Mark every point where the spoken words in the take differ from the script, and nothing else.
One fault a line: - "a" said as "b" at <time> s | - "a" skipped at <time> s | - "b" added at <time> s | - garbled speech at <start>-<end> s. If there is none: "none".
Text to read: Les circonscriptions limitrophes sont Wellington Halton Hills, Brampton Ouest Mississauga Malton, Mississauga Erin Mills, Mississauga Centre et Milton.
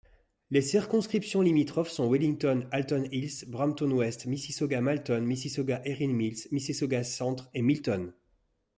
none